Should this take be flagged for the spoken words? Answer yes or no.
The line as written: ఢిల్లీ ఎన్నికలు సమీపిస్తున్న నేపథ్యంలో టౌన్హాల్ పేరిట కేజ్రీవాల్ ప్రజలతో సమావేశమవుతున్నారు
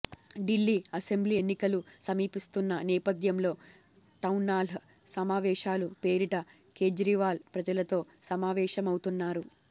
yes